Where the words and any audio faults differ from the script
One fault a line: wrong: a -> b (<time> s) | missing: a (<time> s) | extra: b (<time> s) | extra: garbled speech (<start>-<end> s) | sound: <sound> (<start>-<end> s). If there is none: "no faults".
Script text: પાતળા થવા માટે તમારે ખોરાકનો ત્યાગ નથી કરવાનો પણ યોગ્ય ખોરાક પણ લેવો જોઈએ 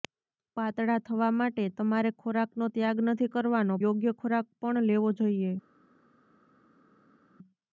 missing: પણ (3.8 s)